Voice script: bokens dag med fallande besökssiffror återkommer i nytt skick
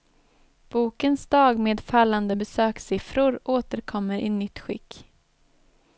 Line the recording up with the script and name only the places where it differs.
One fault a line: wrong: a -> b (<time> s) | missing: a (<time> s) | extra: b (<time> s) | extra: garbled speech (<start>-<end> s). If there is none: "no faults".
no faults